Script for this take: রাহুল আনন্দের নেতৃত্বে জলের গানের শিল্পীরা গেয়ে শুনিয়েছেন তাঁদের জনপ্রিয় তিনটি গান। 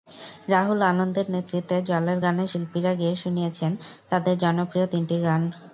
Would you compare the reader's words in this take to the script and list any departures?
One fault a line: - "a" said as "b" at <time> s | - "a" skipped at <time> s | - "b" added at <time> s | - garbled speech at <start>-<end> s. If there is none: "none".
none